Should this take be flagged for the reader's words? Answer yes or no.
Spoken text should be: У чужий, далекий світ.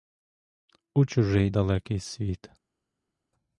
no